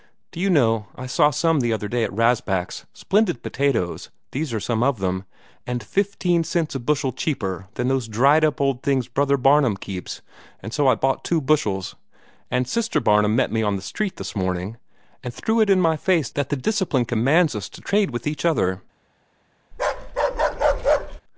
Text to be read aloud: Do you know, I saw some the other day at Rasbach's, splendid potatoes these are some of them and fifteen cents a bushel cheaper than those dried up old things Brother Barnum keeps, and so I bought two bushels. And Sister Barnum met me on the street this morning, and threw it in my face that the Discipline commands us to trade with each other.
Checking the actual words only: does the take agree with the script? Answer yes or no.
yes